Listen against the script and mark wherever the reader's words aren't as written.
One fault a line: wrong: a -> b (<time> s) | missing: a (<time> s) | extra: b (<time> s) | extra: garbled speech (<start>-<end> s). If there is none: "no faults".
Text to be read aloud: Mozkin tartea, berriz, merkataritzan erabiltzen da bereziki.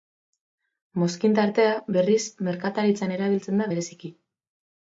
no faults